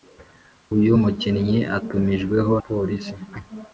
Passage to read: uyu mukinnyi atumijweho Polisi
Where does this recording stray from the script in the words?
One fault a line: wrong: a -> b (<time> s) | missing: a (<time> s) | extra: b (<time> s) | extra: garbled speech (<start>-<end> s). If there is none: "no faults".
no faults